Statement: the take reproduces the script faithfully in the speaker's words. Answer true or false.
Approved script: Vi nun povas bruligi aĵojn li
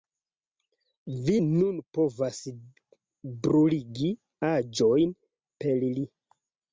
false